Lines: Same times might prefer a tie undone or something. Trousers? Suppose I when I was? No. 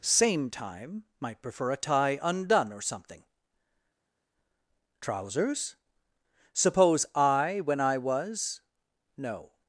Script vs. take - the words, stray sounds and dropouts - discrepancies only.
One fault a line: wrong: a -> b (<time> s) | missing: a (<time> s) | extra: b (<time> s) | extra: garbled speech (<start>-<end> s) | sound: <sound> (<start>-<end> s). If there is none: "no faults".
wrong: times -> time (0.5 s)